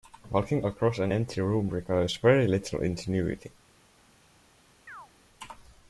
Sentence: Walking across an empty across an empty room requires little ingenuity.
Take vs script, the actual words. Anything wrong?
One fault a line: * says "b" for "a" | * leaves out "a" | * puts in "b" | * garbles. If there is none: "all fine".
* leaves out "across an empty"
* puts in "very"